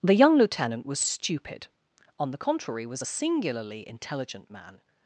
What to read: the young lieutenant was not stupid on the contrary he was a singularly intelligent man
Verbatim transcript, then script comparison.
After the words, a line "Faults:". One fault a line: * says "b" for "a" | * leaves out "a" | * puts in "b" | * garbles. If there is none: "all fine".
the young lieutenant was stupid on the contrary was a singularly intelligent man
Faults:
* leaves out "not"
* leaves out "he"